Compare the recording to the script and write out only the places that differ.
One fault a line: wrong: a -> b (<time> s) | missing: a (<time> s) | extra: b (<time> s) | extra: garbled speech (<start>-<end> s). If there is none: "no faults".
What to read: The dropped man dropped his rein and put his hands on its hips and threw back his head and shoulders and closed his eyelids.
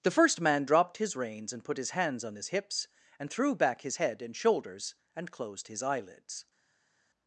wrong: dropped -> first (0.1 s)
wrong: rein -> reins (1.1 s)
wrong: its -> his (2.4 s)